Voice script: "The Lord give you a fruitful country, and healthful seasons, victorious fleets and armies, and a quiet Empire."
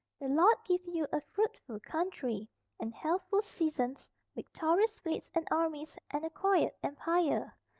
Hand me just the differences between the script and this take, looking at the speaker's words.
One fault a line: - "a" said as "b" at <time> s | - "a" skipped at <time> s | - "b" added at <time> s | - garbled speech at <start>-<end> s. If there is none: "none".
none